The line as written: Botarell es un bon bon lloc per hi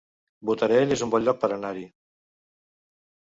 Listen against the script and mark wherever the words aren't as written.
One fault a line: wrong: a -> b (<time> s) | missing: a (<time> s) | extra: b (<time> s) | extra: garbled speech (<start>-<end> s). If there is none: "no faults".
missing: bon (1.3 s)
extra: anar (1.6 s)